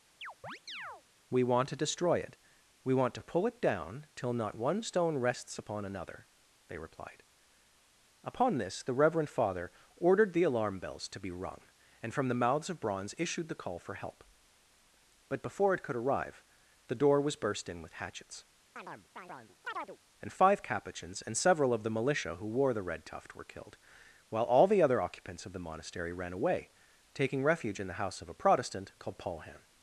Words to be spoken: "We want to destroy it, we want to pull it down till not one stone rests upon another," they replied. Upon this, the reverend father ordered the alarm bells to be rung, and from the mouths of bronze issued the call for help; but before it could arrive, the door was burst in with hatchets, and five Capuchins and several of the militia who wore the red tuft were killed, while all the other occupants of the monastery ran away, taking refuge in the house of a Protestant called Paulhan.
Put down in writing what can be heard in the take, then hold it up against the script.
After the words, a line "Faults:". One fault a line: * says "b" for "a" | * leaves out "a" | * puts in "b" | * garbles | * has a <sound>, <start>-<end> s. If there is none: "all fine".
"We want to destroy it, we want to pull it down till not one stone rests upon another," they replied. Upon this, the reverend father ordered the alarm bells to be rung, and from the mouths of bronze issued the call for help; but before it could arrive, the door was burst in with hatchets, and five Capuchins and several of the militia who wore the red tuft were killed, while all the other occupants of the monastery ran away, taking refuge in the house of a Protestant called Paulhan.
Faults:
* has a chirp, 0.2-1.0 s
* has a chirp, 18.8-20.0 s